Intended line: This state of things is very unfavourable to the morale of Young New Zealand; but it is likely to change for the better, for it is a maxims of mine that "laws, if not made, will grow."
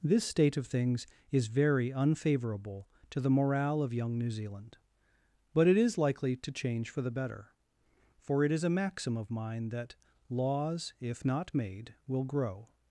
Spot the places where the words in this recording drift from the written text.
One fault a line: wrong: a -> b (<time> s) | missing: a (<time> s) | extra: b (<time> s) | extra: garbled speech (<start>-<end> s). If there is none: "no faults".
wrong: maxims -> maxim (8.7 s)